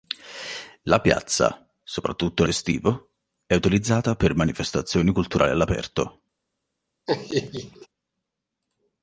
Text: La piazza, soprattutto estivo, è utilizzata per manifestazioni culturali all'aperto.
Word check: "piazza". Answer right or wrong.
right